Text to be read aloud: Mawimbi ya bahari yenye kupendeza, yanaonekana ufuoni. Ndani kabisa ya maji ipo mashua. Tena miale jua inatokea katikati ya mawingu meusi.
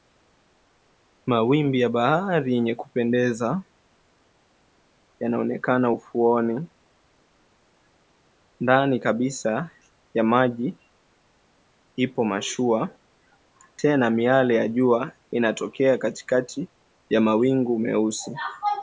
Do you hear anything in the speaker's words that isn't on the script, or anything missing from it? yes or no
yes